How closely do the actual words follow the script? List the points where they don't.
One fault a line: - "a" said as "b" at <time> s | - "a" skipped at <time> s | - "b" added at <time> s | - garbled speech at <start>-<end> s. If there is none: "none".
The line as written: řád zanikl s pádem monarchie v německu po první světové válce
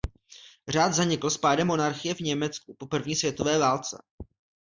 none